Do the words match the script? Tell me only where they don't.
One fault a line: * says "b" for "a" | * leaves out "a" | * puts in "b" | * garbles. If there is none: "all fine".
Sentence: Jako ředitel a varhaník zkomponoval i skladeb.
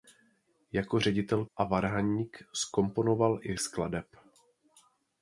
all fine